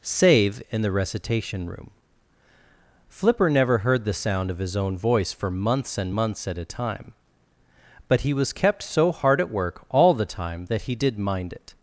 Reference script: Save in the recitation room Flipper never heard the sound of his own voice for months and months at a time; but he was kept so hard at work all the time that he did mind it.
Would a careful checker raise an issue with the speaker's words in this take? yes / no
no